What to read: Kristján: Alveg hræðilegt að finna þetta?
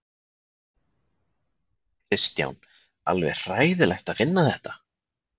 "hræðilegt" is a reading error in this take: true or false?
false